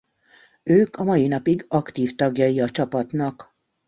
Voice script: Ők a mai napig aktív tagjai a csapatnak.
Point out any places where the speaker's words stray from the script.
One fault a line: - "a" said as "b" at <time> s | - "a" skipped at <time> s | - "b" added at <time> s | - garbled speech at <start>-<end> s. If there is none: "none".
none